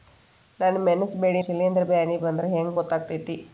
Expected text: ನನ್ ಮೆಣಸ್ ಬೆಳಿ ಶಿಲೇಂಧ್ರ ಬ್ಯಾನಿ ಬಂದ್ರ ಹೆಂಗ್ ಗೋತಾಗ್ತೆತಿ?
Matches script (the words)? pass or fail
pass